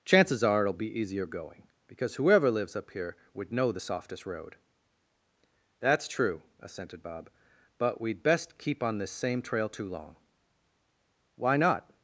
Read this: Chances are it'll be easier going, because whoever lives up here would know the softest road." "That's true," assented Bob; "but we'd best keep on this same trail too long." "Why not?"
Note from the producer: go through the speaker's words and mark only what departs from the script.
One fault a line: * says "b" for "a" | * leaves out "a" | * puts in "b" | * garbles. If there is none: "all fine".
all fine